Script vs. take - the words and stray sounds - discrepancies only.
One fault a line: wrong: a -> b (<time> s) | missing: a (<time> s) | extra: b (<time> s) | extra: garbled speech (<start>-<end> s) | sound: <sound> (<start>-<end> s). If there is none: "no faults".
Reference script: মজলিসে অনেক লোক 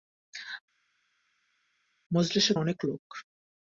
no faults